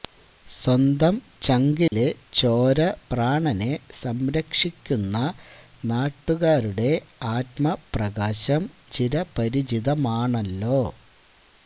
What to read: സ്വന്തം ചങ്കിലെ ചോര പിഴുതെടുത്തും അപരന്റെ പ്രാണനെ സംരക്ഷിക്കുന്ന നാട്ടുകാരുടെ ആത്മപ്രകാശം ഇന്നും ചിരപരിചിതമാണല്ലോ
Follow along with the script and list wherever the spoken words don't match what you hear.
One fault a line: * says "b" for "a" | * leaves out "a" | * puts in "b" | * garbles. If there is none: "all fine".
* leaves out "പിഴുതെടുത്തും അപരന്റെ"
* leaves out "ഇന്നും"